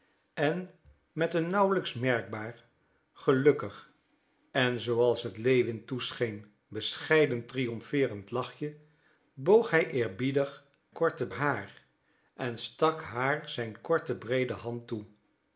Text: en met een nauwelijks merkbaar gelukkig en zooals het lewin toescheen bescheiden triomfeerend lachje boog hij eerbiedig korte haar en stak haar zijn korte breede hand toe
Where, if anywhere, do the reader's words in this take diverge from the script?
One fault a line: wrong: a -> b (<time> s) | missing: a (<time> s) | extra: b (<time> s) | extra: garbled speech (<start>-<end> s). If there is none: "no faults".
no faults